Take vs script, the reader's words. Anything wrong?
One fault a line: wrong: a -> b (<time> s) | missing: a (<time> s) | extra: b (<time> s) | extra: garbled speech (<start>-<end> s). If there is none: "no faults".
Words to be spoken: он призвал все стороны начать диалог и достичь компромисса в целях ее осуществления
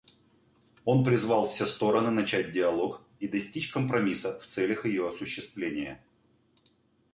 no faults